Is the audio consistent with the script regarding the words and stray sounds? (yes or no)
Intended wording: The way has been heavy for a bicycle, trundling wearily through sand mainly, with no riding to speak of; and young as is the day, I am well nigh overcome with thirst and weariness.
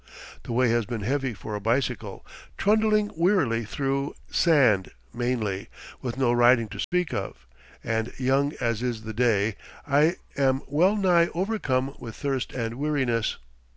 no